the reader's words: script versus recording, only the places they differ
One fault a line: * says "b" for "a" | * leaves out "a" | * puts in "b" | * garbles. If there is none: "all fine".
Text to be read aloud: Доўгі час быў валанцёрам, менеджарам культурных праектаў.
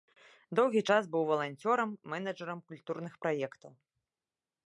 all fine